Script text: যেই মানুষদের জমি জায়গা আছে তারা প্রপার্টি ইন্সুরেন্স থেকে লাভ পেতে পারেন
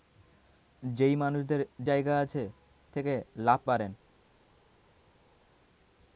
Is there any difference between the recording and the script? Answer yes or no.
yes